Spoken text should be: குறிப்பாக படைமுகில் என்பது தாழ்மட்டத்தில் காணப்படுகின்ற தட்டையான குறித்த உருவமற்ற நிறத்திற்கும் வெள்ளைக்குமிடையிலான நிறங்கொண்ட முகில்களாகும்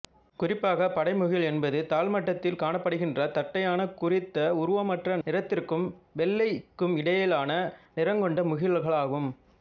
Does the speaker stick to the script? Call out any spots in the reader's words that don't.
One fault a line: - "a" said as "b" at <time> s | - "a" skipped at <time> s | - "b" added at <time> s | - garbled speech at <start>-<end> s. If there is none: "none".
none